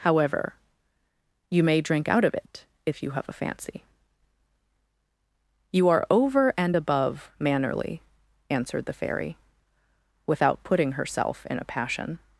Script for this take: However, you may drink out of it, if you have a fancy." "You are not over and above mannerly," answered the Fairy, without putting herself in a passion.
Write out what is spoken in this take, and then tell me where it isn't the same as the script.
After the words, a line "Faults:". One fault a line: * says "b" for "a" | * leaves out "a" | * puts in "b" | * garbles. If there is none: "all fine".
However, you may drink out of it, if you have a fancy." "You are over and above mannerly," answered the Fairy, without putting herself in a passion.
Faults:
* leaves out "not"